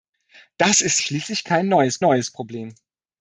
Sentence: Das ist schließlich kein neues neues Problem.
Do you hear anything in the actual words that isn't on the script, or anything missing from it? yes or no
no